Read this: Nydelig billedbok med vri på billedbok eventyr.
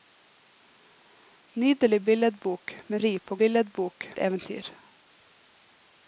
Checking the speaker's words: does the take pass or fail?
pass